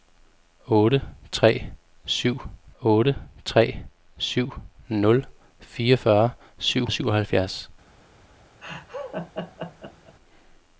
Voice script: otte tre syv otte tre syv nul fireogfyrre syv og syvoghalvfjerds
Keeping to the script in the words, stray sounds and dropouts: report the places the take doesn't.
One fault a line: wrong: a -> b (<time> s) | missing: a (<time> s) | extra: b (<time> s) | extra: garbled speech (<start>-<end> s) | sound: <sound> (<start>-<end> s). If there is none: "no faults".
sound: laugh (8.6-10.2 s)